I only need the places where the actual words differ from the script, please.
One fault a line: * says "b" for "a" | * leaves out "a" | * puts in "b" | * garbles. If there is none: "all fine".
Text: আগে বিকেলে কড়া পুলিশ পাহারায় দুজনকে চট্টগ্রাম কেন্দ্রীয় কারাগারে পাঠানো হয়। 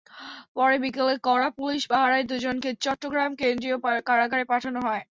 * says "পরে" for "আগে"